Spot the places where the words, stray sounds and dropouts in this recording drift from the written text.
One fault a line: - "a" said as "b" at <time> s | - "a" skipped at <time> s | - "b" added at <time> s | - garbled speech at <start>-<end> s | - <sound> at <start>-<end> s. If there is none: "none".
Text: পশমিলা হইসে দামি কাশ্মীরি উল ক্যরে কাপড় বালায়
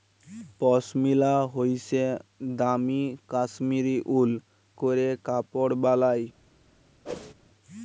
- whoosh at 7.1-7.3 s